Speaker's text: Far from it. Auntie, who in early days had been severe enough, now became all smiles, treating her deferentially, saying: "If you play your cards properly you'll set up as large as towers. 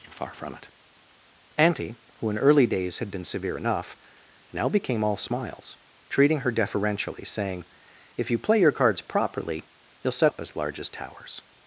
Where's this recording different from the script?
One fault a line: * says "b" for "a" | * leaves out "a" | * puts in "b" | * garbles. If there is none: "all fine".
all fine